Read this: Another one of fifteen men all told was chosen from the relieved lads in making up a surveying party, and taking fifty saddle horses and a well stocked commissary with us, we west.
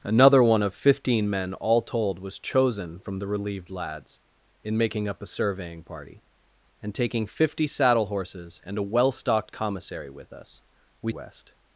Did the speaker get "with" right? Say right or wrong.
right